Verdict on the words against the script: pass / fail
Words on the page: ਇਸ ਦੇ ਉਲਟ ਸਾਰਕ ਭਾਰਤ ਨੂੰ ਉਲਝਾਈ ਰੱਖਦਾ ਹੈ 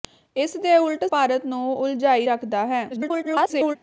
fail